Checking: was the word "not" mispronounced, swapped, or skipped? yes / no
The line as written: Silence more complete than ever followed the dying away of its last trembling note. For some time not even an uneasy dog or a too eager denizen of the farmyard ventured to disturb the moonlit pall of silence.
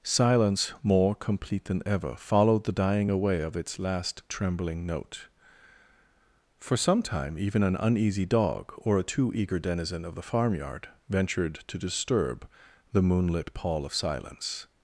yes